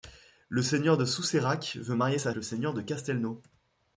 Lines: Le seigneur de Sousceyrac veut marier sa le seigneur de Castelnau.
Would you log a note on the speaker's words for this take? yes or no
no